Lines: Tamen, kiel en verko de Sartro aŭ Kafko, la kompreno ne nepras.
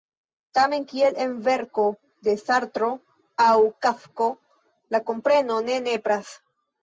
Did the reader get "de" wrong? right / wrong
right